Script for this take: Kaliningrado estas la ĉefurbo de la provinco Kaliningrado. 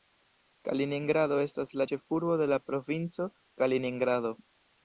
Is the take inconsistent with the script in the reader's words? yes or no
no